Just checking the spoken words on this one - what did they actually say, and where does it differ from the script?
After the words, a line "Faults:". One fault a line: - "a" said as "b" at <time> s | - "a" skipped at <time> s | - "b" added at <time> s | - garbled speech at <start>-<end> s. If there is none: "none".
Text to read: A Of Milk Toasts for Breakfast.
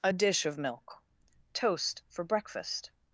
A Dish of Milk Toast for Breakfast.
Faults:
- "Dish" added at 0.1 s
- "Toasts" said as "Toast" at 1.5 s